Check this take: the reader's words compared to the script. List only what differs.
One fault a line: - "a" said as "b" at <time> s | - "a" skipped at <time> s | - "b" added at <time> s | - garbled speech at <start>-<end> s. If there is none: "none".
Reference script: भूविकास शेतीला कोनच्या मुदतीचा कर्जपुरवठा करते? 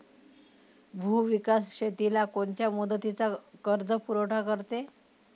none